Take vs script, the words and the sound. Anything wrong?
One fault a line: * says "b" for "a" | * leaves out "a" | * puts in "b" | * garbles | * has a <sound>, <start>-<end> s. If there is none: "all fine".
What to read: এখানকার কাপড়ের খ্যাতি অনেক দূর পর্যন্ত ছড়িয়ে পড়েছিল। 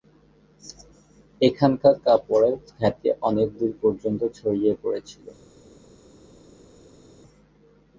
all fine